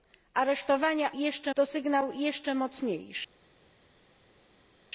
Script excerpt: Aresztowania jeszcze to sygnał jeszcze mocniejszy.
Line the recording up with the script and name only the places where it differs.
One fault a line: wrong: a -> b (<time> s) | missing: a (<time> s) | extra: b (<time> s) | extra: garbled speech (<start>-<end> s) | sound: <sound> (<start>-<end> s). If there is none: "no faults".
no faults